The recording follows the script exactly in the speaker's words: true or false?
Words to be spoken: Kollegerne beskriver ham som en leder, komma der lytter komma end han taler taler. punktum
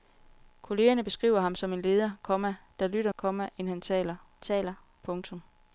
true